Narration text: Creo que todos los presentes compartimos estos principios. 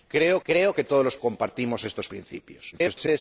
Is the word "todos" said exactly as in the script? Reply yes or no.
yes